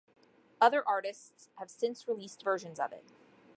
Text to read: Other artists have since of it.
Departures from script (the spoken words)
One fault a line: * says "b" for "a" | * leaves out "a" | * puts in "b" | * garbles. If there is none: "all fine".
* puts in "released versions"